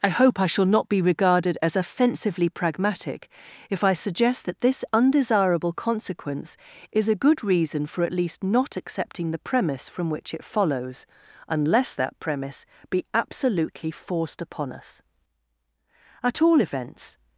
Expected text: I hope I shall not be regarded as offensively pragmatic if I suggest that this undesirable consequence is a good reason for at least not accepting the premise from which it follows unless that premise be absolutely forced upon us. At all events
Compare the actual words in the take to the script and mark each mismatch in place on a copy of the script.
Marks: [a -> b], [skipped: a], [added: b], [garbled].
I hope I shall not be regarded as offensively pragmatic if I suggest that this undesirable consequence is a good reason for at least not accepting the premise from which it follows unless that premise be absolutely forced upon us. At all events